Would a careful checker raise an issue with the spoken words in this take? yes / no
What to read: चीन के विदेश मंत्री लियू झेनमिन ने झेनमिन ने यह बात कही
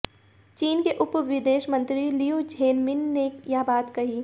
yes